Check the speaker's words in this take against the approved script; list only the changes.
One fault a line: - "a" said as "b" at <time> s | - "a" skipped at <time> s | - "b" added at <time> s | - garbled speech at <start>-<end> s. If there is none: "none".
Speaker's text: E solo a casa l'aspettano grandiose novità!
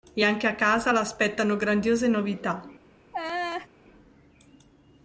- "solo" said as "anche" at 0.2 s